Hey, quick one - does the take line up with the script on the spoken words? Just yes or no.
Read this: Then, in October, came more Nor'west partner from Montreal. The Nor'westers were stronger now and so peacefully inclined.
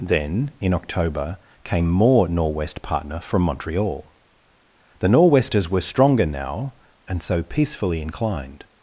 yes